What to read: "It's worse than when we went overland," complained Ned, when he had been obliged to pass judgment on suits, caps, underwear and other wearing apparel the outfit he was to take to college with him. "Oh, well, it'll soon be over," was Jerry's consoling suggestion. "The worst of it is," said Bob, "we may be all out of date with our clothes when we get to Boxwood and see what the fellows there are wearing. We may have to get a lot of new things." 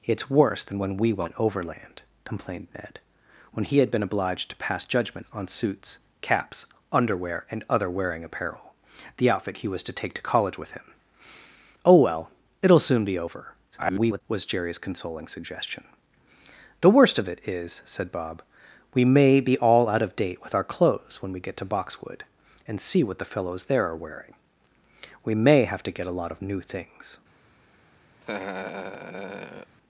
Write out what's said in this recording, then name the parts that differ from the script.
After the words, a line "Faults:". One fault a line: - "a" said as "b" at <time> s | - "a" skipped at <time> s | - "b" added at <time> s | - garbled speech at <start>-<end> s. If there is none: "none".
"It's worse than when we went overland," complained Ned, when he had been obliged to pass judgment on suits, caps, underwear and other wearing apparel the outfit he was to take to college with him. "Oh, well, it'll soon be over," [garbled] was Jerry's consoling suggestion. "The worst of it is," said Bob, "we may be all out of date with our clothes when we get to Boxwood and see what the fellows there are wearing. We may have to get a lot of new things."
Faults:
- garbled speech at 13.7-14.2 s